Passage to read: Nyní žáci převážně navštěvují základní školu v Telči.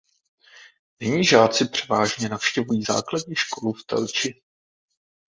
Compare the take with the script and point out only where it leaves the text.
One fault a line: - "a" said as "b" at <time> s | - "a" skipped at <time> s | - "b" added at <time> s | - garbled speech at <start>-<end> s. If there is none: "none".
none